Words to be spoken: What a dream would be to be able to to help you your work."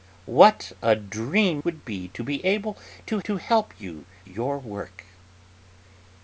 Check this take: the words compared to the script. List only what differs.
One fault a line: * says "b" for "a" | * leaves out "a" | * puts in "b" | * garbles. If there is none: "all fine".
all fine